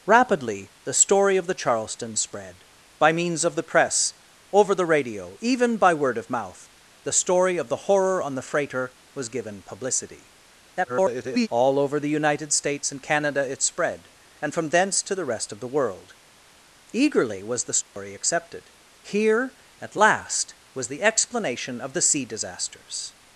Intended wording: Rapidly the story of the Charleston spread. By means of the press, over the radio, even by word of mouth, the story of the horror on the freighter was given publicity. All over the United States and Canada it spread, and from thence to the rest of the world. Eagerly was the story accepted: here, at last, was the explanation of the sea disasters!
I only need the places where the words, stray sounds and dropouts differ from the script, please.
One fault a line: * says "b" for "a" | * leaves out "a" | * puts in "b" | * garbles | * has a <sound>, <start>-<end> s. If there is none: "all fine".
* garbles
* has a dropout, 17.8-18.0 s